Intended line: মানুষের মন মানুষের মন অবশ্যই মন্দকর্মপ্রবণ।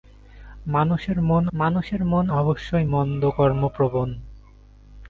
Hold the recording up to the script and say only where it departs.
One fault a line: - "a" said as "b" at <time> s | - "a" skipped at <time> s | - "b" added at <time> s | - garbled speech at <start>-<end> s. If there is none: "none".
none